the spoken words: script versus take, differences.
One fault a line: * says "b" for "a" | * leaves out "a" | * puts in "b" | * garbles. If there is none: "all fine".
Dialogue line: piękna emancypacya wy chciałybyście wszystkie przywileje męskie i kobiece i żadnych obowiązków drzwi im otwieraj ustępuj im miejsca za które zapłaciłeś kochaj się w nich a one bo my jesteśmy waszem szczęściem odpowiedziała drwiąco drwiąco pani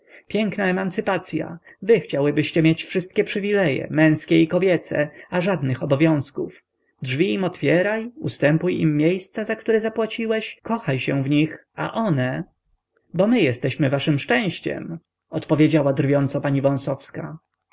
* puts in "mieć"
* says "a" for "i"
* leaves out "drwiąco"